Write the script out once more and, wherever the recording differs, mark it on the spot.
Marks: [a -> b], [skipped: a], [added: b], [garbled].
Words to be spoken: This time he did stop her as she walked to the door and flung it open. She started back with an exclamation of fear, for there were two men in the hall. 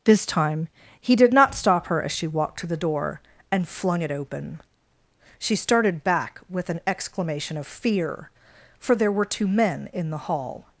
This time he did [added: not] stop her as she walked to the door and flung it open. She started back with an exclamation of fear, for there were two men in the hall.